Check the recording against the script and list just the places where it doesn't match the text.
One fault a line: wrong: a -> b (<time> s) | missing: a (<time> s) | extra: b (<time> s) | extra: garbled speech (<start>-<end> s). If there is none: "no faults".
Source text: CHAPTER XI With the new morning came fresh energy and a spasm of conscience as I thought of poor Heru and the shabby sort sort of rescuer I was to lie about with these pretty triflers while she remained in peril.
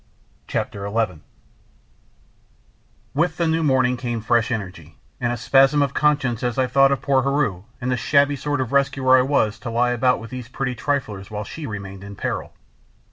missing: sort (8.6 s)